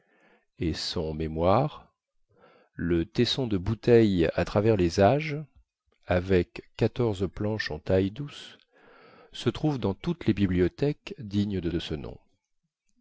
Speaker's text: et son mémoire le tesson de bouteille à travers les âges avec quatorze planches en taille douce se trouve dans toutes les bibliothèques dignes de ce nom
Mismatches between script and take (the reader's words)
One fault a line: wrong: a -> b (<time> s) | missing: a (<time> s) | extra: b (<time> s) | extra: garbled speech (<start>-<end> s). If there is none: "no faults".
extra: de (11.7 s)